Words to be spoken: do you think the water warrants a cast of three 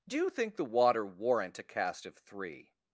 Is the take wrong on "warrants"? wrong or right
wrong